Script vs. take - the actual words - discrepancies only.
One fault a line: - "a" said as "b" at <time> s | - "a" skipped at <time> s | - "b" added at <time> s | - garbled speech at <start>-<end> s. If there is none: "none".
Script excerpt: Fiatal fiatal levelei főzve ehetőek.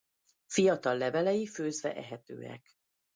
- "fiatal" skipped at 1.0 s